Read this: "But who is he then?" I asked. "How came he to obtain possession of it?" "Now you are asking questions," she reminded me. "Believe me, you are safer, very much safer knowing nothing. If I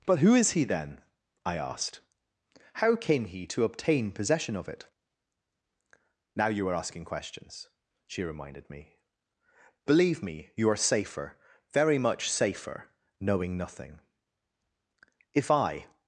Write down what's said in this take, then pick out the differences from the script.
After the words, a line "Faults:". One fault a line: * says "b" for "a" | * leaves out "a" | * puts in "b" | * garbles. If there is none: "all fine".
"But who is he then?" I asked. "How came he to obtain possession of it?" "Now you are asking questions," she reminded me. "Believe me, you are safer, very much safer knowing nothing. If I
Faults:
all fine